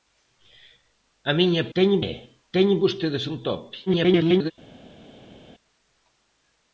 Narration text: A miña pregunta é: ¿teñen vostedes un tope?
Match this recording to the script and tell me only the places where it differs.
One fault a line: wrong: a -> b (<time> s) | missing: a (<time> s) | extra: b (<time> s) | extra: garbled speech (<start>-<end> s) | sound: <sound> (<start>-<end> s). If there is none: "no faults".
wrong: pregunta -> teñen (1.7 s)
extra: garbled speech (3.9-4.5 s)